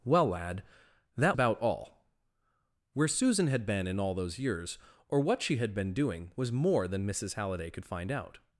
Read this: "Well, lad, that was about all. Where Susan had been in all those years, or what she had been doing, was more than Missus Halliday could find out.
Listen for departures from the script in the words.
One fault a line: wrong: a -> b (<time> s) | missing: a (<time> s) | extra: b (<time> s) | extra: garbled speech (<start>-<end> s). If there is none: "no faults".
missing: was (1.4 s)